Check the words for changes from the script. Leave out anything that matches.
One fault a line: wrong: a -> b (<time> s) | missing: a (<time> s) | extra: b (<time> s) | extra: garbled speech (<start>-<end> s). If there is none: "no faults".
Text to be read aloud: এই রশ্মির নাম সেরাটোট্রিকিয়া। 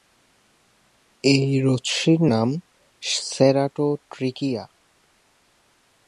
no faults